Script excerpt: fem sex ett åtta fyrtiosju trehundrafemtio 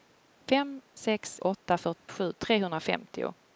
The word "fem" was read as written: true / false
true